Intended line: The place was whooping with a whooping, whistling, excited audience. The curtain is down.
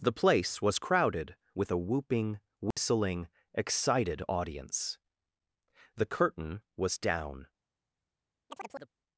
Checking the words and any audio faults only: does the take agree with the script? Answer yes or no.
no